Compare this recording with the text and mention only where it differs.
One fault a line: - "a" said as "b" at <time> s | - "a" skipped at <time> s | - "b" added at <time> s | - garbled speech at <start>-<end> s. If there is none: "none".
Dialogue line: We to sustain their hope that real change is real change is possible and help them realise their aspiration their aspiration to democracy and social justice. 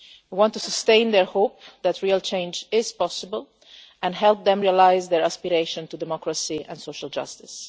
- "want" added at 0.4 s
- "real change is" skipped at 2.9 s
- "their aspiration" skipped at 5.9 s